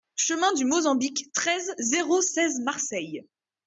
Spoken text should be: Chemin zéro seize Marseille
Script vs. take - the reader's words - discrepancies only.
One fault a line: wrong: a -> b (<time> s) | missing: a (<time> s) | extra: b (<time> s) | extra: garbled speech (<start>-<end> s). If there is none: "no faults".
extra: du Mozambique treize (0.5 s)